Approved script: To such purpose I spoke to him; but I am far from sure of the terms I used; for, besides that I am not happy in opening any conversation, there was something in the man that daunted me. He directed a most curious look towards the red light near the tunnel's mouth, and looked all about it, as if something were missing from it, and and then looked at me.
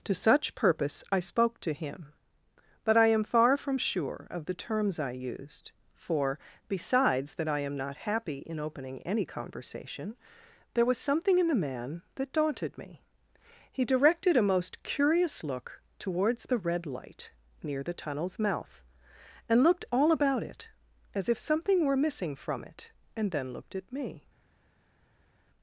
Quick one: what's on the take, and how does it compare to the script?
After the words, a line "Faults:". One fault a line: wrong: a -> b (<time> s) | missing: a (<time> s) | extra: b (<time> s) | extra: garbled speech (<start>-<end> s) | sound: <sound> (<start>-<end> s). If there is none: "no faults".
To such purpose I spoke to him; but I am far from sure of the terms I used; for, besides that I am not happy in opening any conversation, there was something in the man that daunted me. He directed a most curious look towards the red light near the tunnel's mouth, and looked all about it, as if something were missing from it, and then looked at me.
Faults:
missing: and (23.3 s)